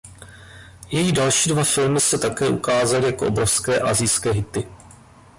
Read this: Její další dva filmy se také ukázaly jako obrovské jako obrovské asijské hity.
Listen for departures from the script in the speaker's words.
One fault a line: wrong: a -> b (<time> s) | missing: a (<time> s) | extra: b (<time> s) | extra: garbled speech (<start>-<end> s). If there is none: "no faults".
missing: jako obrovské (3.8 s)